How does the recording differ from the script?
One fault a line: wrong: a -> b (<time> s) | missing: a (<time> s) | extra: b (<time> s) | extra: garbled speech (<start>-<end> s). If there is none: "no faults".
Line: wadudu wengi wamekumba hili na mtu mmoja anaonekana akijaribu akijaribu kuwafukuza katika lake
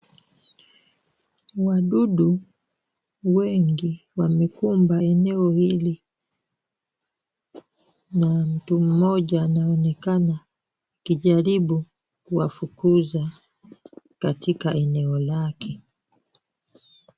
extra: eneo (5.0 s)
missing: akijaribu (11.8 s)
extra: eneo (14.7 s)